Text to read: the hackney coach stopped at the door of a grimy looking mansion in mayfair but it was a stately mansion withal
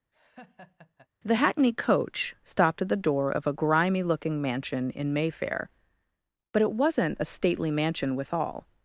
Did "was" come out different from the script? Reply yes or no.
yes